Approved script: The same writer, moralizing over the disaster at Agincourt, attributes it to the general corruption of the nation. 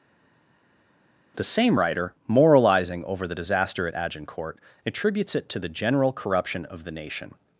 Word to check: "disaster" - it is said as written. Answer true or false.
true